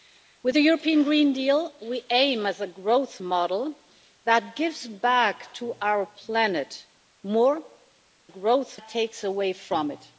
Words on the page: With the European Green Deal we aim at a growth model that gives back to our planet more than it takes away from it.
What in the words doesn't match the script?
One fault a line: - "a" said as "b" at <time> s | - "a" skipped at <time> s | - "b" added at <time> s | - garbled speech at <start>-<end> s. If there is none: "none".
- "than" said as "growth" at 8.3 s